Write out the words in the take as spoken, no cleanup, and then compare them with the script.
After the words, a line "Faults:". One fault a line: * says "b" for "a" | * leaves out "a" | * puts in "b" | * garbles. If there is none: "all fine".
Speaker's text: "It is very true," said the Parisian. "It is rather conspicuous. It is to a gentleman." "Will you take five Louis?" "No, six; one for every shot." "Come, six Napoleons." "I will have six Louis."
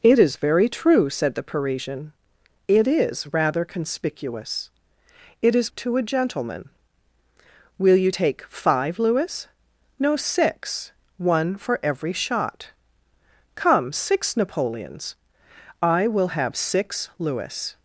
"It is very true," said the Parisian. "It is rather conspicuous. It is to a gentleman." "Will you take five Louis?" "No, six; one for every shot." "Come, six Napoleons." "I will have six Louis."
Faults:
all fine